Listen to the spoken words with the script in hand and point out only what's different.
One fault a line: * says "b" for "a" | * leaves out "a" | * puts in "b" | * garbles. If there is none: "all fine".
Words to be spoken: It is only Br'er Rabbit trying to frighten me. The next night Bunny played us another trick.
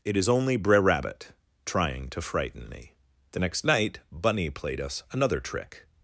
all fine